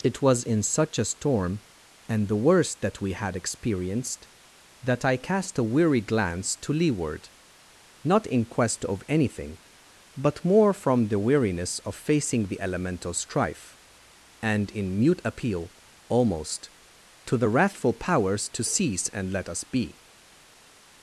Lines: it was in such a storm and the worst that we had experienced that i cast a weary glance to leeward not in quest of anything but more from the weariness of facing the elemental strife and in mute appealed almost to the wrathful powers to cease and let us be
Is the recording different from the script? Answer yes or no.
yes